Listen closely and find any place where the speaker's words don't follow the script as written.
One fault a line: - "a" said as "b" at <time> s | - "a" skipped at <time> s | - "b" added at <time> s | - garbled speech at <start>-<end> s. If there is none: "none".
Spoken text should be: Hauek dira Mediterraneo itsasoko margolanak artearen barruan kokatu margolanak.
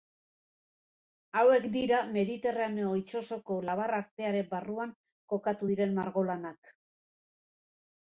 - "margolanak" said as "labar" at 3.7 s
- "diren" added at 5.7 s